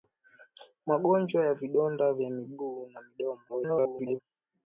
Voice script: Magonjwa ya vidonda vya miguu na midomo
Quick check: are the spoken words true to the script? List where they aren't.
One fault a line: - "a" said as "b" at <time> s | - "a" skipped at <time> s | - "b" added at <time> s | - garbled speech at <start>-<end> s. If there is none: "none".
- garbled speech at 3.5-4.2 s